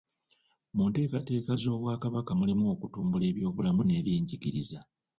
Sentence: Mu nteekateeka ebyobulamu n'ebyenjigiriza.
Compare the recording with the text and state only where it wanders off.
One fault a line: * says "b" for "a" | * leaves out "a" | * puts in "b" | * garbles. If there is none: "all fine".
* puts in "z'Obwakabaka mulimu okutumbula"